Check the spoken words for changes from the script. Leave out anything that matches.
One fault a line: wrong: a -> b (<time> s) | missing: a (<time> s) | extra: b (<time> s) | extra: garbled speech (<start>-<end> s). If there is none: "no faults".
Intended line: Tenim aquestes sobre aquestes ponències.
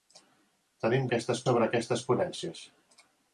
no faults